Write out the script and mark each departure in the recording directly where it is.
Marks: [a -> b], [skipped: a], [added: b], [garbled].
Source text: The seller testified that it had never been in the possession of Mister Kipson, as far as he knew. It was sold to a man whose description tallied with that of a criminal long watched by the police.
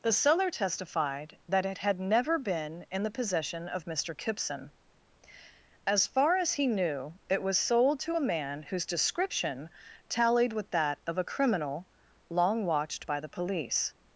The seller testified that it had never been in the possession of Mister Kipson, as far as he knew. It was sold to a man whose description tallied with that of a criminal long watched by the police.